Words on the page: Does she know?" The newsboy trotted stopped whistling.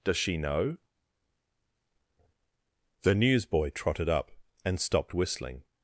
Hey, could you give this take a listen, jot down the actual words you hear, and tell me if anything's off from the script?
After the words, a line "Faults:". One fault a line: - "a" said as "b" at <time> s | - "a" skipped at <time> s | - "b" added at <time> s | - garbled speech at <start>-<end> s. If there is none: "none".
Does she know?" The newsboy trotted up, and stopped whistling.
Faults:
- "up and" added at 4.1 s